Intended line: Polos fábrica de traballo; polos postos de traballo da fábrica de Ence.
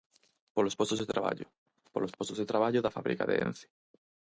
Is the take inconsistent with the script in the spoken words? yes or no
yes